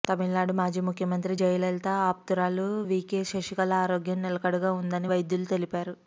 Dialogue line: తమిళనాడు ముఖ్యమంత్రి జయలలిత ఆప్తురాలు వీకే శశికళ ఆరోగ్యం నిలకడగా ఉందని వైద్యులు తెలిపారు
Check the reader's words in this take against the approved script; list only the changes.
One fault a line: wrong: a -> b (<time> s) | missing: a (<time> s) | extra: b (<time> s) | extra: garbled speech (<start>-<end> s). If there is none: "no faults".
extra: మాజీ (0.5 s)